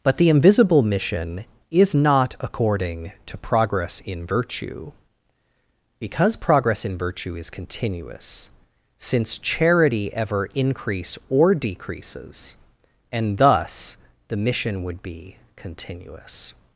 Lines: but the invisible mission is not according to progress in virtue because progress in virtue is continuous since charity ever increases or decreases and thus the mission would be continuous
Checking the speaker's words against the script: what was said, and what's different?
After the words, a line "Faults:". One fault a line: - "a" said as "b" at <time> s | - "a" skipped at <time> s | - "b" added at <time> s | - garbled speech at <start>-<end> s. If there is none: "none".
but the invisible mission is not according to progress in virtue because progress in virtue is continuous since charity ever increase or decreases and thus the mission would be continuous
Faults:
- "increases" said as "increase" at 10.5 s